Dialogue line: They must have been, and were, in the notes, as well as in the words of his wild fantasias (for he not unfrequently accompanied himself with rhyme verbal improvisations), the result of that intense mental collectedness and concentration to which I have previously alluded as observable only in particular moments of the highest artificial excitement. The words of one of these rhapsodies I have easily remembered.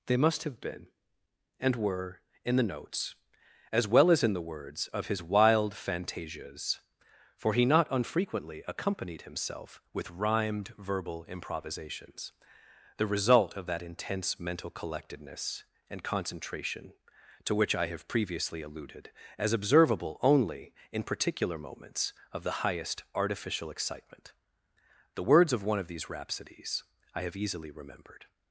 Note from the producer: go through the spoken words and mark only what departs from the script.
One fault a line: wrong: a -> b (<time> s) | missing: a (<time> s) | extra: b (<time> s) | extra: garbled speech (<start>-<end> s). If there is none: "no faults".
wrong: rhyme -> rhymed (10.1 s)